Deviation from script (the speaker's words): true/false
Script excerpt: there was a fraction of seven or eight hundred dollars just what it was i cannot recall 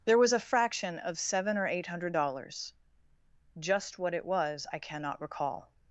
false